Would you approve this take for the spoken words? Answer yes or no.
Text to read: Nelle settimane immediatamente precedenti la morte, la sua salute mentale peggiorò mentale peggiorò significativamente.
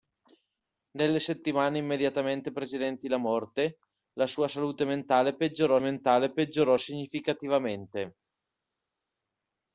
yes